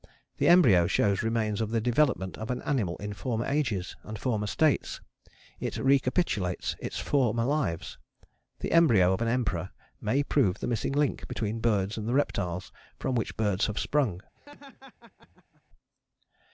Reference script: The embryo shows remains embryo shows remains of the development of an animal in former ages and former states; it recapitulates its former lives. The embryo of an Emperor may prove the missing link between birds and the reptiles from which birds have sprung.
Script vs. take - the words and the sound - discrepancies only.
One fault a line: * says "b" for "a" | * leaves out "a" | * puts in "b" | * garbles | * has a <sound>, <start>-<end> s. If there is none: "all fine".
* leaves out "embryo shows remains"
* has a laugh, 14.3-15.6 s